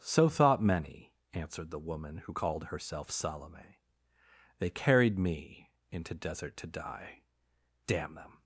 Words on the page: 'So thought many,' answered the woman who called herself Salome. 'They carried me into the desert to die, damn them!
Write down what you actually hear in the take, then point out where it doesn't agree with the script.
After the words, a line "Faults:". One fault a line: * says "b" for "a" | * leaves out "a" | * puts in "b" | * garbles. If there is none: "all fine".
'So thought many,' answered the woman who called herself Salome. 'They carried me into desert to die, damn them!
Faults:
* leaves out "the"